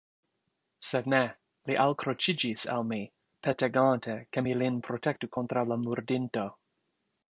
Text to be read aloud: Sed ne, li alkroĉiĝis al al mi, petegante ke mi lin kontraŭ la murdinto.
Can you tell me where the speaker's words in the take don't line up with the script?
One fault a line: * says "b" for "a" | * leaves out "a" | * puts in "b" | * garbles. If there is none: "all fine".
* leaves out "al"
* puts in "protektu"